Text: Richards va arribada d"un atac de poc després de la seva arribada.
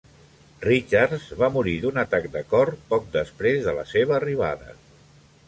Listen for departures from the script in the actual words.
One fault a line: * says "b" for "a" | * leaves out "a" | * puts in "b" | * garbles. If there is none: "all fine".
* says "morir" for "arribada"
* puts in "cor"